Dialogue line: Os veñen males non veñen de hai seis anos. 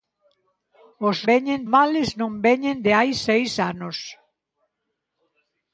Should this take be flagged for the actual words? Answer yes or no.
no